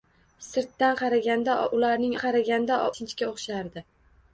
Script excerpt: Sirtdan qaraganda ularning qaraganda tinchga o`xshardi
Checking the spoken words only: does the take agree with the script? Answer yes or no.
yes